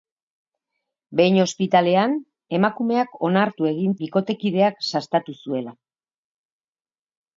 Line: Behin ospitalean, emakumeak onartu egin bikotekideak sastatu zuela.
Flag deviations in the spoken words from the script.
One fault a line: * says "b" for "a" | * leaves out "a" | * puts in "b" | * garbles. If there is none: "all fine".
all fine